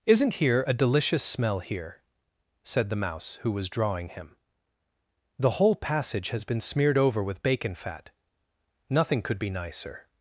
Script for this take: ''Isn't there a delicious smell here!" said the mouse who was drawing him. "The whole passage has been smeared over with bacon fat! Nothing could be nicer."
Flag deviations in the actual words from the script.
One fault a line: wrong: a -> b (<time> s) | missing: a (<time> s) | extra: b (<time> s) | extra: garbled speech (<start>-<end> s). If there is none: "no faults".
wrong: there -> here (0.3 s)